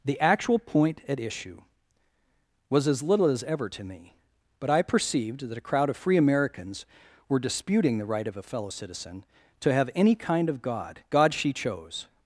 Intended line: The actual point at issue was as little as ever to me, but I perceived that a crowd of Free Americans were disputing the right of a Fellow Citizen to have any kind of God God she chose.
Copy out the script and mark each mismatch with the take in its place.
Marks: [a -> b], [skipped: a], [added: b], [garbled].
The actual point at issue was as little as ever to me, but I perceived that a crowd of Free Americans were disputing the right of a Fellow Citizen to have any kind of God God she chose.